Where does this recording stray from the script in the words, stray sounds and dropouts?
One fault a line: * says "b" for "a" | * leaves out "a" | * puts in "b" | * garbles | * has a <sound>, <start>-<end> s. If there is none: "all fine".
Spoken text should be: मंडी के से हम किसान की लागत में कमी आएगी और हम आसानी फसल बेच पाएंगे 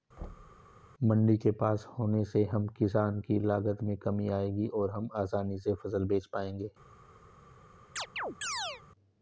* has a thud, 0.2-0.7 s
* puts in "पास होने"
* puts in "से"
* has a chirp, 8.0-8.8 s